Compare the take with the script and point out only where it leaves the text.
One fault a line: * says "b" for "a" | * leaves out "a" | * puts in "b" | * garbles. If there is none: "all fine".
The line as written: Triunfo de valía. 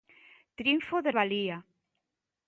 all fine